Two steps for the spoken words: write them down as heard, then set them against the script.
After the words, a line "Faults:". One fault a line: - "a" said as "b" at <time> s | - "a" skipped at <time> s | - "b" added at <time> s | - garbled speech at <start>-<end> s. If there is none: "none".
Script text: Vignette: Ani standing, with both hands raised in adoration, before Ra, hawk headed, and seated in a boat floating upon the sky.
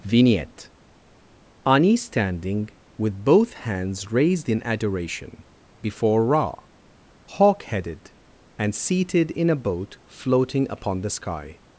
Vignette: Ani standing, with both hands raised in adoration, before Ra, hawk headed, and seated in a boat floating upon the sky.
Faults:
none